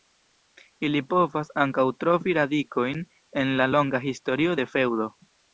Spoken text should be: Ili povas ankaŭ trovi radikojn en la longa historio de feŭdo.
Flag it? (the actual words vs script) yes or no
no